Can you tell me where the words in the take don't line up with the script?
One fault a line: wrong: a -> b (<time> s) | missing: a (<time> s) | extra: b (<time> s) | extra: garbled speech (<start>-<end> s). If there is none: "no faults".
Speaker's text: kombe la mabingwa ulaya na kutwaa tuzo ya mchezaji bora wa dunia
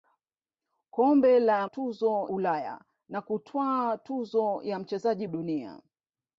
wrong: mabingwa -> tuzo (1.6 s)
missing: bora wa (5.3 s)